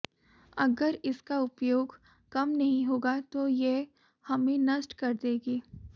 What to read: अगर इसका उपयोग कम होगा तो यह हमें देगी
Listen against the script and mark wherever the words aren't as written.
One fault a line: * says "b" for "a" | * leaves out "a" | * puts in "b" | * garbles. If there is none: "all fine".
* puts in "नहीं"
* puts in "नष्ट कर"